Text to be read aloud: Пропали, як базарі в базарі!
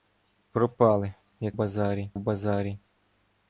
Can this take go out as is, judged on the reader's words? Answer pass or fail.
pass